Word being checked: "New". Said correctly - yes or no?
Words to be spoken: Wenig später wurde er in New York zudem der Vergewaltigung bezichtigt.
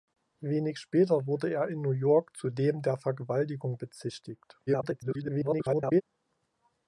yes